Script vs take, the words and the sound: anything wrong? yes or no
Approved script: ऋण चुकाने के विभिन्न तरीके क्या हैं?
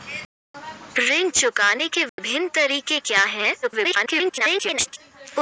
yes